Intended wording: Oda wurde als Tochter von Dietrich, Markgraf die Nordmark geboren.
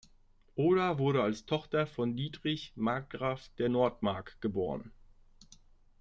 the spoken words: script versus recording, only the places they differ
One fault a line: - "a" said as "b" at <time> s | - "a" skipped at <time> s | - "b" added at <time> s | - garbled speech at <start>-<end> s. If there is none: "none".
- "die" said as "der" at 3.6 s